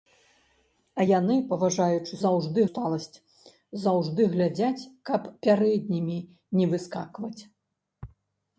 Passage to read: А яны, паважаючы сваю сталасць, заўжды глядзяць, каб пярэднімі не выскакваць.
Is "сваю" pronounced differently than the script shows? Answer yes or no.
yes